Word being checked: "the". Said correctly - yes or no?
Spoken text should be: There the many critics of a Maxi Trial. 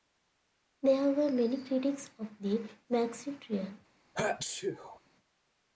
no